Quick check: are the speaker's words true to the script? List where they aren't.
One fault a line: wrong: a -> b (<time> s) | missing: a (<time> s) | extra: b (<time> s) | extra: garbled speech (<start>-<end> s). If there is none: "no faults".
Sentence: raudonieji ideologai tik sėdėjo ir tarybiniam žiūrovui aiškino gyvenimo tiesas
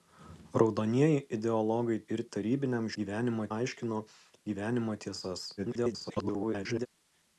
missing: tik sėdėjo (2.0 s)
wrong: žiūrovui -> gyvenimo (3.0 s)
extra: garbled speech (5.6-6.9 s)